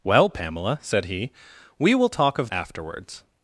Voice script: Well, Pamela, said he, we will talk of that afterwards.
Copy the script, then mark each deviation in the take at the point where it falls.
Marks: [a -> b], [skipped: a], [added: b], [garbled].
Well, Pamela, said he, we will talk of [skipped: that] afterwards.